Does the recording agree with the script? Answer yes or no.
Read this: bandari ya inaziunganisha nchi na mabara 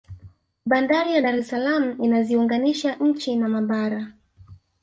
no